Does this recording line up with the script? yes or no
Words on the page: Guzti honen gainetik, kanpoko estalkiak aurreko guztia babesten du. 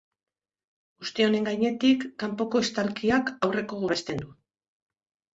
no